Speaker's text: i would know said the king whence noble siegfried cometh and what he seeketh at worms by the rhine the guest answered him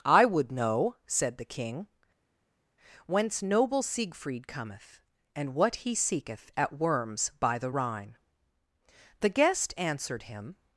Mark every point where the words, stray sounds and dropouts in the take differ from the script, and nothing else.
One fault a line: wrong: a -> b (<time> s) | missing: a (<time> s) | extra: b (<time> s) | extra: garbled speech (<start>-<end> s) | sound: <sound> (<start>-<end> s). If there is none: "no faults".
no faults